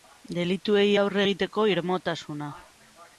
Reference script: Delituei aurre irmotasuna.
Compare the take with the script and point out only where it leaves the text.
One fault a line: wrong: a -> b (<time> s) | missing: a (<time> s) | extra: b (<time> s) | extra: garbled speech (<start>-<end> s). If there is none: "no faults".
extra: egiteko (1.2 s)